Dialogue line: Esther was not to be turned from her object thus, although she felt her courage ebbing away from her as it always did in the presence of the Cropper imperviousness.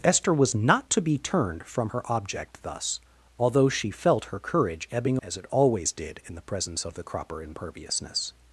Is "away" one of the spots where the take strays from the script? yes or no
yes